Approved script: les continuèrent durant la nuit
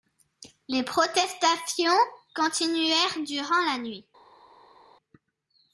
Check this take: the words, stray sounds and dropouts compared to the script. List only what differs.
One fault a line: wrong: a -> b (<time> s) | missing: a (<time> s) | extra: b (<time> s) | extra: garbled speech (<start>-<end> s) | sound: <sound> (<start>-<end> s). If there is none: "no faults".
extra: protestations (0.8 s)